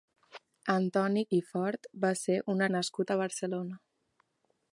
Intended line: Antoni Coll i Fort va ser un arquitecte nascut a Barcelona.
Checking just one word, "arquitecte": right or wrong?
wrong